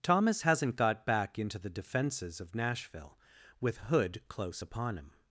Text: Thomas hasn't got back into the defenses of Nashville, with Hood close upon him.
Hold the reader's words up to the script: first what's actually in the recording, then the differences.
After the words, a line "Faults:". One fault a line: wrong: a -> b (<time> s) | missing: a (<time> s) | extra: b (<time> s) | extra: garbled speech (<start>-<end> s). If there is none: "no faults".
Thomas hasn't got back into the defenses of Nashville, with Hood close upon him.
Faults:
no faults